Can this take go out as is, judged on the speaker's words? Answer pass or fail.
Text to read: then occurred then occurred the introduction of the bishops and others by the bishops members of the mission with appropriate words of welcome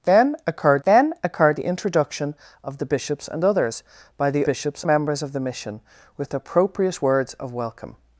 pass